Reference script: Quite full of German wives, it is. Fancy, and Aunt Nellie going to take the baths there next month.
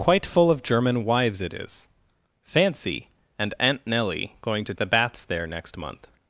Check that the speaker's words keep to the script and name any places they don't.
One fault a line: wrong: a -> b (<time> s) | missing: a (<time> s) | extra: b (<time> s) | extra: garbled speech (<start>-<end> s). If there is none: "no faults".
missing: take (4.7 s)